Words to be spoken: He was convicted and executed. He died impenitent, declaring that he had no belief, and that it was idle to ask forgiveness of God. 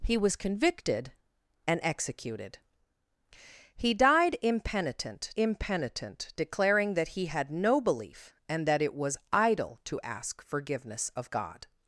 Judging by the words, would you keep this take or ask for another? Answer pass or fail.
fail